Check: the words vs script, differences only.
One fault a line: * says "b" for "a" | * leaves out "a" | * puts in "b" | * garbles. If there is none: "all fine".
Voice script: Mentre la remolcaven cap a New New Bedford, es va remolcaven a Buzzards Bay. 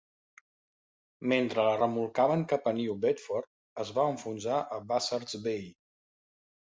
* leaves out "New"
* says "enfonsar" for "remolcaven"